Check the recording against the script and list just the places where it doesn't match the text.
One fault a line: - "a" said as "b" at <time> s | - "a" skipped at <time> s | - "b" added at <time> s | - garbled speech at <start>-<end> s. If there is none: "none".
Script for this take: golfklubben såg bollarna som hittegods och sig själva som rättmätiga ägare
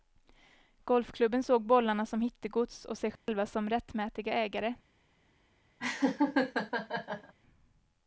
none